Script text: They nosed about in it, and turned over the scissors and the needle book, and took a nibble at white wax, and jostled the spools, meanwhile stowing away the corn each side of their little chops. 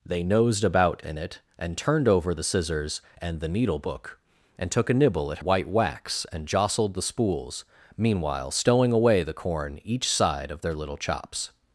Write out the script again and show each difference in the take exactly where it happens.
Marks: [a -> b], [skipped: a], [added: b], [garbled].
They nosed about in it, and turned over the scissors and the needle book, and took a nibble at white wax, and jostled the spools, meanwhile stowing away the corn each side of their little chops.